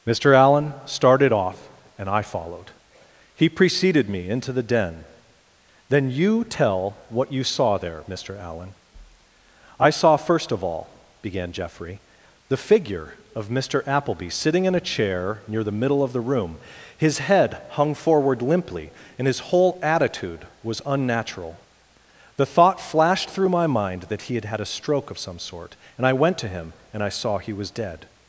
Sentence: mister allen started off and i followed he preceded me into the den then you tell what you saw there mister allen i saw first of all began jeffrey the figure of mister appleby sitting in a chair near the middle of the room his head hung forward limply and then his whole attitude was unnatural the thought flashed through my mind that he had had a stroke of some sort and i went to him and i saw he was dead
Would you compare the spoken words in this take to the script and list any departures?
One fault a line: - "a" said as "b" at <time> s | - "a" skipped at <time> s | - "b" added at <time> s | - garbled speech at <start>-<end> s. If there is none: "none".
- "then" skipped at 19.3 s